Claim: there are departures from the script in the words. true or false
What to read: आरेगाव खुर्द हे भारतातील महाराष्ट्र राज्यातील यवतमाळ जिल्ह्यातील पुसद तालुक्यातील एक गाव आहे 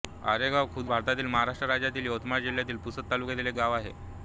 true